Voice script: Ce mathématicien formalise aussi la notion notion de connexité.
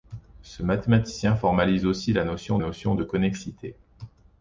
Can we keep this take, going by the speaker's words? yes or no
yes